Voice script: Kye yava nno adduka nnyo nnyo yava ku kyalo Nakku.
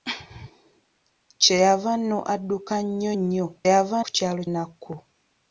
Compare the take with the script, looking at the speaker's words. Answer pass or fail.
pass